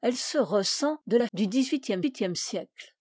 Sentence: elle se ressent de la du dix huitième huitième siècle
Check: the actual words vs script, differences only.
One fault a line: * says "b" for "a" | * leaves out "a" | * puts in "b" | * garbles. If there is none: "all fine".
all fine